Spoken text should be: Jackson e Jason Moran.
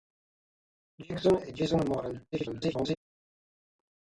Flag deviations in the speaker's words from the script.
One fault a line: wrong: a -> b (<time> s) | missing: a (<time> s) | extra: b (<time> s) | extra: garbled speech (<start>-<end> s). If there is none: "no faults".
extra: garbled speech (2.3-3.0 s)